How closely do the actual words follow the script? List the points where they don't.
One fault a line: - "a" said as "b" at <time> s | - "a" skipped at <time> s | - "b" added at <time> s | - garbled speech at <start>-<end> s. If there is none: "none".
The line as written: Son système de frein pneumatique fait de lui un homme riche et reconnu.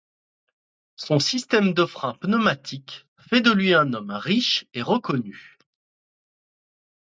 none